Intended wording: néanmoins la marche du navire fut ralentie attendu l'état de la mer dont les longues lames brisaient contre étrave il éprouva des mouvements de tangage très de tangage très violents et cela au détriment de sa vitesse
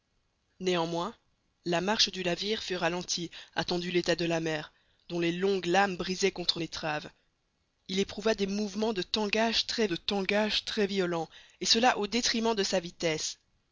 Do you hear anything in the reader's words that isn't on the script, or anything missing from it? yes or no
no